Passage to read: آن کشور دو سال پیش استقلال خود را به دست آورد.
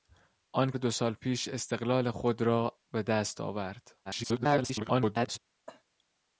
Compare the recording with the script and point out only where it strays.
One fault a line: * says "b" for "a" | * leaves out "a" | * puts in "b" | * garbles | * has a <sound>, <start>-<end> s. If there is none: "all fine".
* leaves out "کشور"
* garbles
* has a cough, 5.7-5.8 s